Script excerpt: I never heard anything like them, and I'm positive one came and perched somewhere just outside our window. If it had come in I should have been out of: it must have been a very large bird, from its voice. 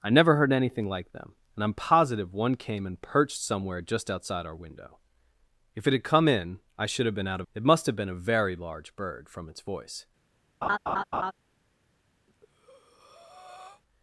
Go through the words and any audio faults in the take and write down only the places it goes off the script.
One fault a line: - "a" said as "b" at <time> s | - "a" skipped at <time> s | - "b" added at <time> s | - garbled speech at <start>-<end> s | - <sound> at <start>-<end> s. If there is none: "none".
- laugh at 10.6-11.3 s
- breath at 12.3-13.8 s